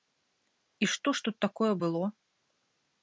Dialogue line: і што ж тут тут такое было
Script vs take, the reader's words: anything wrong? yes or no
yes